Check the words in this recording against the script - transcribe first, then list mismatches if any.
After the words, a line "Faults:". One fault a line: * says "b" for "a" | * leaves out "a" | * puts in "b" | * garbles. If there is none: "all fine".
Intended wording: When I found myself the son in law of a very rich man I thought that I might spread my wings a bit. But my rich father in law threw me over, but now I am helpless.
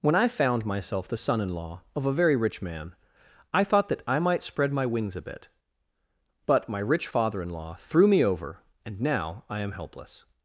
When I found myself the son in law of a very rich man I thought that I might spread my wings a bit. But my rich father in law threw me over, and now I am helpless.
Faults:
* says "and" for "but"